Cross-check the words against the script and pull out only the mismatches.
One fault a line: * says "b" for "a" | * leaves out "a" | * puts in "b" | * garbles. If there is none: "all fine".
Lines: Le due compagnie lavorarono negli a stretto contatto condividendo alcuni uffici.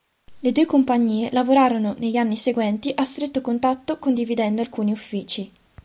* puts in "anni seguenti"